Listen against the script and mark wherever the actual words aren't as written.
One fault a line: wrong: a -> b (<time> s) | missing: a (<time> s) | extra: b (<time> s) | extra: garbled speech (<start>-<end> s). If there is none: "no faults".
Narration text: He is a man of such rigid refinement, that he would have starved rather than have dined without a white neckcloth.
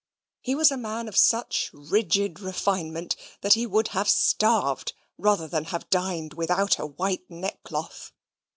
wrong: is -> was (0.6 s)